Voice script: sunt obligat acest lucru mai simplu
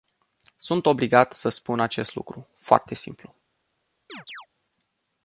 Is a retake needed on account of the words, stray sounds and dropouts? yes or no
yes